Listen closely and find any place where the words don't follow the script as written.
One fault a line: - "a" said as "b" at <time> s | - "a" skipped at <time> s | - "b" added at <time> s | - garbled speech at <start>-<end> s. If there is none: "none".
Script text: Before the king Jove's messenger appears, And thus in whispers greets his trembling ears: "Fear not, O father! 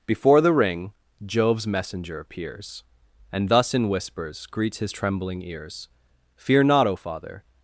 - "king" said as "ring" at 0.5 s